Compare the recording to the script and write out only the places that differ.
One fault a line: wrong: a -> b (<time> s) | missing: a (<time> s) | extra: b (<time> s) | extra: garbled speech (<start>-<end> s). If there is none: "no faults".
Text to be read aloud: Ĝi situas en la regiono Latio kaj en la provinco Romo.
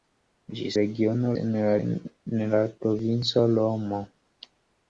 wrong: situas -> regiono (0.8 s)
missing: regiono Latio kaj (1.7 s)